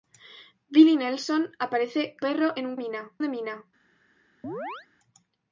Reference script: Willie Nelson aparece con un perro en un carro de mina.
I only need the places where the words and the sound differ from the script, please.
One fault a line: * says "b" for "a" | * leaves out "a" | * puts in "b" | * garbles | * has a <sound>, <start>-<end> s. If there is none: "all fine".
* leaves out "con un"
* says "mina" for "carro"
* has a chirp, 4.4-4.9 s